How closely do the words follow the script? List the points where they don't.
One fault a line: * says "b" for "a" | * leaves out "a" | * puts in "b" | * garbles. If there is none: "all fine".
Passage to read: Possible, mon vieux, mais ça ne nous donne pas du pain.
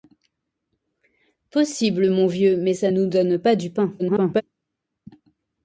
* leaves out "ne"
* garbles